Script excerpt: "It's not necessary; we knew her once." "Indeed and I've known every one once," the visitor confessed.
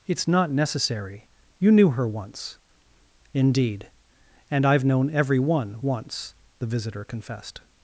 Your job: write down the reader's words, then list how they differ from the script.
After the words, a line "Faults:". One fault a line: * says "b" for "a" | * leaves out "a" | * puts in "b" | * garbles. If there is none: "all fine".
"It's not necessary; you knew her once." "Indeed and I've known every one once," the visitor confessed.
Faults:
* says "you" for "we"